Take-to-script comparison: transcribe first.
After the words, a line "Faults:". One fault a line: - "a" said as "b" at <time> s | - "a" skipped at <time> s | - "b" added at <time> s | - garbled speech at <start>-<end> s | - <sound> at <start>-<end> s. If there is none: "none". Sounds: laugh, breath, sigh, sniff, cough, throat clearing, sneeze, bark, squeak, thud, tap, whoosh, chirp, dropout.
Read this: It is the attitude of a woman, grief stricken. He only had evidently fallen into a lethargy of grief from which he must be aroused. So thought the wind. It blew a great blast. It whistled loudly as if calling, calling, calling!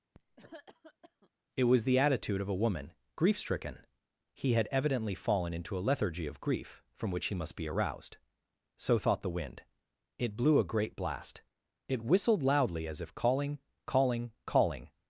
It was the attitude of a woman, grief stricken. He had evidently fallen into a lethargy of grief from which he must be aroused. So thought the wind. It blew a great blast. It whistled loudly as if calling, calling, calling!
Faults:
- cough at 0.1-1.3 s
- "is" said as "was" at 1.6 s
- "only" skipped at 4.5 s